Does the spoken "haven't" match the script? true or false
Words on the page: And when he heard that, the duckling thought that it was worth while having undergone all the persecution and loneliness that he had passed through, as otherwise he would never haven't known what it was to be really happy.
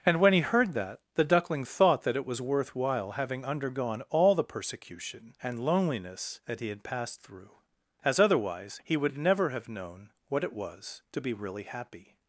false